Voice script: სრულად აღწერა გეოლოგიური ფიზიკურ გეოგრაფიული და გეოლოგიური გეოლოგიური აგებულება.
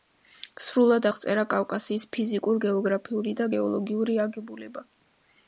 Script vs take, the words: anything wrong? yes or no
yes